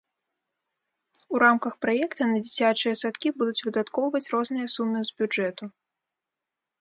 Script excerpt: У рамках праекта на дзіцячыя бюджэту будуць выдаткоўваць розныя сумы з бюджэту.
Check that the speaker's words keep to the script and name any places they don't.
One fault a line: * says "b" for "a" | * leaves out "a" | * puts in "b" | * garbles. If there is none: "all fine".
* says "садкі" for "бюджэту"